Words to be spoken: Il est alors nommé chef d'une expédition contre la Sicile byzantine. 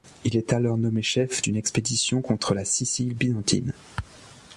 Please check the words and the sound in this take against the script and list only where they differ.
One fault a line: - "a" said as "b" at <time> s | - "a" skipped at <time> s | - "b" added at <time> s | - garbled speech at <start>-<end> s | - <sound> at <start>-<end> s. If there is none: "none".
none